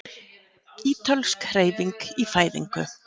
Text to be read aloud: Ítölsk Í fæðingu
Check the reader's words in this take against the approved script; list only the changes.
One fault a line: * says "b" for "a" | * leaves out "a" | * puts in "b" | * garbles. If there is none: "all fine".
* puts in "Hreyfing"